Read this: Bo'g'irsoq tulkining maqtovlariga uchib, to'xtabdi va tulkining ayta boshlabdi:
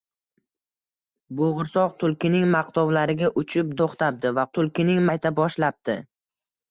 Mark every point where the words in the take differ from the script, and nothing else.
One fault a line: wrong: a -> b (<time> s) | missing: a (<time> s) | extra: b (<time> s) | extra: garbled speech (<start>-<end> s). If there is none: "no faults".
no faults